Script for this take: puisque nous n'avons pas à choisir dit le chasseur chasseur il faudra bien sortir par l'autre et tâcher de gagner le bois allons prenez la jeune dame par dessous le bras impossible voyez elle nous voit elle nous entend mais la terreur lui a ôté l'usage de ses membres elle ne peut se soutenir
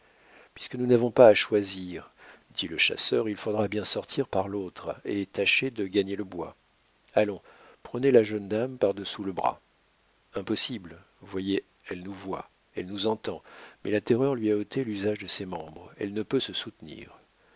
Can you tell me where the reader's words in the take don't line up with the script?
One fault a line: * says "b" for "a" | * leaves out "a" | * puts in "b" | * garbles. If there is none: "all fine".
* leaves out "chasseur"